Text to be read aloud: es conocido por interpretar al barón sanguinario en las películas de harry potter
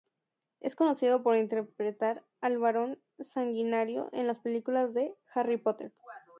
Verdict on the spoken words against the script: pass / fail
pass